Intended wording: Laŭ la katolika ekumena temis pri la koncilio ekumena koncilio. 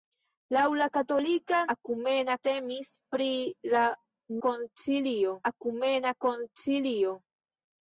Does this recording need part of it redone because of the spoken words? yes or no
no